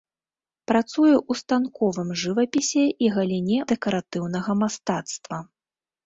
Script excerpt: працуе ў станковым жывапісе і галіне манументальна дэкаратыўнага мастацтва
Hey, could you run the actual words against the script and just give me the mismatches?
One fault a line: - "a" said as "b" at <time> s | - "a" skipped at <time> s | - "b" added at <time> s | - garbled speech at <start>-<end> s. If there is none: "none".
- "манументальна" skipped at 3.6 s